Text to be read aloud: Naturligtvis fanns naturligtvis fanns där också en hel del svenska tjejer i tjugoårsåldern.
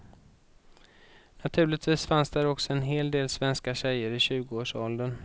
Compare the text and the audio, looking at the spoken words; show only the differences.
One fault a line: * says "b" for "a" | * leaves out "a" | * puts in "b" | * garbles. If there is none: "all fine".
* leaves out "naturligtvis fanns"